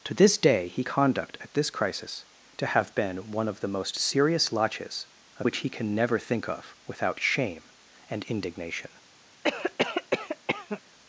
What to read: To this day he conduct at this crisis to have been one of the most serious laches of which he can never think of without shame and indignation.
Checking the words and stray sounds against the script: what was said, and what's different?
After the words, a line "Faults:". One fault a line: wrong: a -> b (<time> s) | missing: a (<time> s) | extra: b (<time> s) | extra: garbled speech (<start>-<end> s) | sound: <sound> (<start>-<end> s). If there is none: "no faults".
To this day he conduct at this crisis to have been one of the most serious laches of which he can never think of without shame and indignation.
Faults:
sound: cough (9.4-10.8 s)